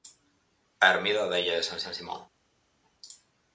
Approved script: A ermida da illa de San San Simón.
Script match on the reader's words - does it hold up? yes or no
yes